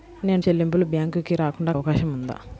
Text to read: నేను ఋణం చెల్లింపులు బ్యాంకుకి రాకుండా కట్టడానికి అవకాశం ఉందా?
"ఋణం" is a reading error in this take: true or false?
true